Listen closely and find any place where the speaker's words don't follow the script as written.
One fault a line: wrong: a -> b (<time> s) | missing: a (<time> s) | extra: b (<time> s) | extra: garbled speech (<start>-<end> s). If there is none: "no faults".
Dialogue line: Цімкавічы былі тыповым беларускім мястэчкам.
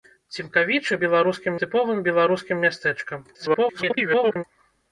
wrong: былі -> беларускім (1.1 s)
extra: garbled speech (3.3-4.4 s)